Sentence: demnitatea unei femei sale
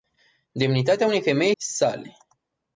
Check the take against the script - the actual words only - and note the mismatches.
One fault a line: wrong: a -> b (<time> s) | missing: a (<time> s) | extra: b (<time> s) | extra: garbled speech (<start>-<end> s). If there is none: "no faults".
no faults